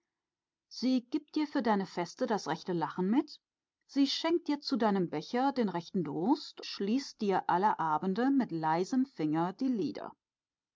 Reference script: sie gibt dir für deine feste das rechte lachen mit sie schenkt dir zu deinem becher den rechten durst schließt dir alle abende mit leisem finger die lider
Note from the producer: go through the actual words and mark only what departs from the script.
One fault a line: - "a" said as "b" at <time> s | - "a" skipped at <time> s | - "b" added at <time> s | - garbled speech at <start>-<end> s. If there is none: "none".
none